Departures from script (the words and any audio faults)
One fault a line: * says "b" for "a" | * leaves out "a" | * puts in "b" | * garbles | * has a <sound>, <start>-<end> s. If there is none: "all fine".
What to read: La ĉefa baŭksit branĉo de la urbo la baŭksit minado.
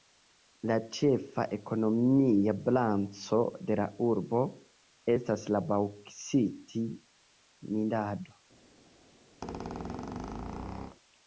* says "ekonomia" for "baŭksit"
* puts in "estas"
* has a squeak, 9.4-11.0 s